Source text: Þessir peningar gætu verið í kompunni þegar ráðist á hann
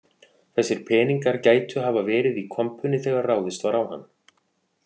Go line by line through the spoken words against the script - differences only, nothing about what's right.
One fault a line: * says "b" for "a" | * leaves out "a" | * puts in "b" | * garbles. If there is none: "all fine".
* puts in "hafa"
* puts in "var"